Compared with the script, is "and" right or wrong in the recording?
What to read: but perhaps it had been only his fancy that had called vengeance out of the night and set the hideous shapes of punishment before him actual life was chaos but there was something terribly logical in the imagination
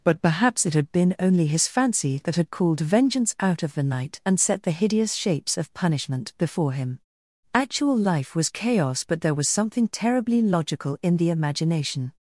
right